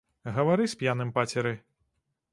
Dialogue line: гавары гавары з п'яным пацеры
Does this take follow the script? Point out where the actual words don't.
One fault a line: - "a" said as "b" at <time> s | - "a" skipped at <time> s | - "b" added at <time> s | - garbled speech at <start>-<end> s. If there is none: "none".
- "гавары" skipped at 0.7 s